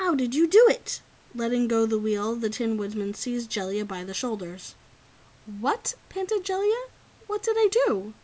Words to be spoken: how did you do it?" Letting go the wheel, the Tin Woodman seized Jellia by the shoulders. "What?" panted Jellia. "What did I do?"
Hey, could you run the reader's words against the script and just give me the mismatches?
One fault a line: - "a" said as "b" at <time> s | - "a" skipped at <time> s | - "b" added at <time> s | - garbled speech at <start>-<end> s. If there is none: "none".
none